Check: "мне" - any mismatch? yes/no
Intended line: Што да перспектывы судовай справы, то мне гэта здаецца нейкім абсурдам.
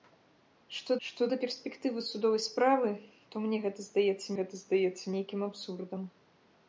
no